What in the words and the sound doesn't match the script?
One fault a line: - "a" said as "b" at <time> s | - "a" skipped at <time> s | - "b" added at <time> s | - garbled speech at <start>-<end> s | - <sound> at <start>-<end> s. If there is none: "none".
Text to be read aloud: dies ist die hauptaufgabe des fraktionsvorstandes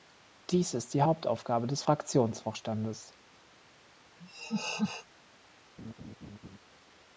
- laugh at 4.2-5.1 s
- laugh at 5.8-6.6 s